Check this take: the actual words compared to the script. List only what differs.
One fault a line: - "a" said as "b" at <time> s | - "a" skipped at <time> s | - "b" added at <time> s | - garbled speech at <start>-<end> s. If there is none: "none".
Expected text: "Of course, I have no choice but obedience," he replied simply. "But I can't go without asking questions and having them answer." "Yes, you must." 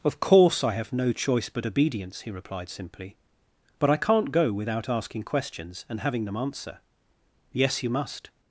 none